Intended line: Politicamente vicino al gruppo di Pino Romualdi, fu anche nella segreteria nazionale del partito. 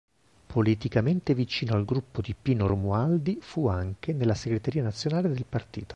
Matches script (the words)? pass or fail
pass